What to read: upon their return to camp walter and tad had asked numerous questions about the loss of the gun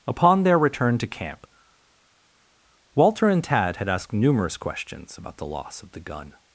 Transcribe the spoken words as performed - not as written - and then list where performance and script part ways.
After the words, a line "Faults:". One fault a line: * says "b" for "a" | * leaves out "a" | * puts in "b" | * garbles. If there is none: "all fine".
upon their return to camp walter and tad had asked numerous questions about the loss of the gun
Faults:
all fine